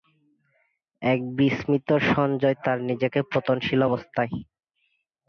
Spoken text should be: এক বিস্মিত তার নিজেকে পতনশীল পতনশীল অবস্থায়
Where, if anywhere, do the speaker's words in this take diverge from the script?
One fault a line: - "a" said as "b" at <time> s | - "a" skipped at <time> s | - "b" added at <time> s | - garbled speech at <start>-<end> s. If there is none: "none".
- "সঞ্জয়" added at 2.1 s
- "পতনশীল" skipped at 3.8 s